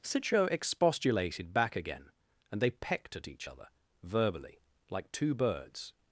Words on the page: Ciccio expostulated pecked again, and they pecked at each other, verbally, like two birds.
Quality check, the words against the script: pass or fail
fail